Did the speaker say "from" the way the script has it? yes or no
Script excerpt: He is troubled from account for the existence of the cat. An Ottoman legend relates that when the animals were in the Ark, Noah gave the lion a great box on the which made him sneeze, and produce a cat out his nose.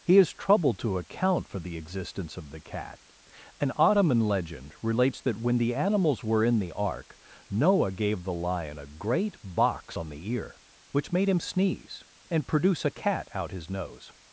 no